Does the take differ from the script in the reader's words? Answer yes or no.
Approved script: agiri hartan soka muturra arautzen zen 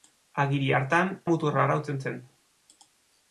yes